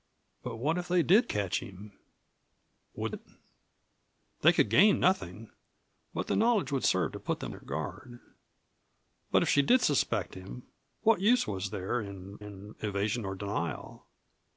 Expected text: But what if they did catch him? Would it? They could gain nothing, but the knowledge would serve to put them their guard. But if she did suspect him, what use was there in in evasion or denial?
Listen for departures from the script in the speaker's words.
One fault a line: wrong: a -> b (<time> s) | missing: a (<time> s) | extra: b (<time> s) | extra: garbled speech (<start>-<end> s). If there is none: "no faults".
no faults